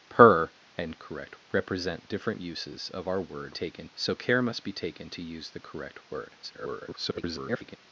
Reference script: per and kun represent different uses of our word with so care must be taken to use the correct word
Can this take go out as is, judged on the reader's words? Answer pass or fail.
fail